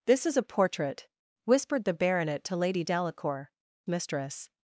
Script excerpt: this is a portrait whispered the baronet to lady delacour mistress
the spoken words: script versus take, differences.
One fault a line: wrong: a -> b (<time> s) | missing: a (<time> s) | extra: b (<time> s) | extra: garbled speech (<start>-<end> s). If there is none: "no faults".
no faults